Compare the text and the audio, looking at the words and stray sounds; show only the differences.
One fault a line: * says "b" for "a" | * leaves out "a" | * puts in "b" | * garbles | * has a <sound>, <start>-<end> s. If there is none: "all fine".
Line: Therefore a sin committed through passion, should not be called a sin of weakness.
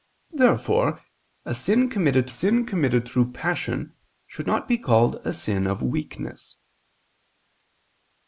* puts in "sin committed"